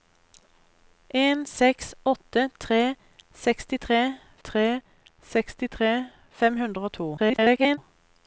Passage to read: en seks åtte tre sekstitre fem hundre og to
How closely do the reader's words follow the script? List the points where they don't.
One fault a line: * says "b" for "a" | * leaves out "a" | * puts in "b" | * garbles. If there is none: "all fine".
* puts in "tre sekstitre"
* garbles